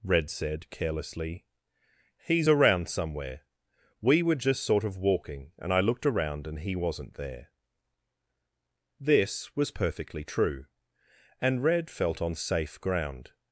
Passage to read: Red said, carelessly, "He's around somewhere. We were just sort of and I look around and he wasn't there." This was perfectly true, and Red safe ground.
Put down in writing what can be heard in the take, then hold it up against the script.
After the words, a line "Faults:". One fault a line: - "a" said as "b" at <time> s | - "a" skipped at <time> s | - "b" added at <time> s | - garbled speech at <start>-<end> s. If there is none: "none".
Red said, carelessly, "He's around somewhere. We were just sort of walking and I looked around and he wasn't there." This was perfectly true, and Red felt on safe ground.
Faults:
- "walking" added at 5.0 s
- "look" said as "looked" at 5.8 s
- "felt on" added at 11.9 s